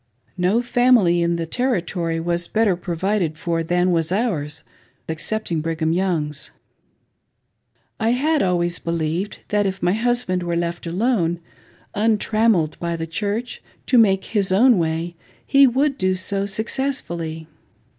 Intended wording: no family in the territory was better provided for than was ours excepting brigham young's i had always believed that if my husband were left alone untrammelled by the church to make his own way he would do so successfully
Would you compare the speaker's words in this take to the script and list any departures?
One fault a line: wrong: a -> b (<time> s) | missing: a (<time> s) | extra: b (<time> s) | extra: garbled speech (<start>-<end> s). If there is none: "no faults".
no faults